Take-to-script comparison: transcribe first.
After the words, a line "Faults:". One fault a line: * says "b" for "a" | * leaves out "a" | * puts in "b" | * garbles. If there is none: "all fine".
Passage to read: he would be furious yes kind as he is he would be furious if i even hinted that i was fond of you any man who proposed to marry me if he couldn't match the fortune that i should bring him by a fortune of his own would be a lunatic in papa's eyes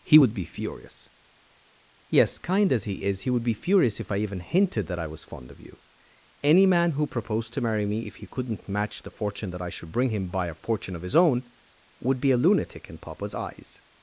he would be furious yes kind as he is he would be furious if i even hinted that i was fond of you any man who proposed to marry me if he couldn't match the fortune that i should bring him by a fortune of his own would be a lunatic in papa's eyes
Faults:
all fine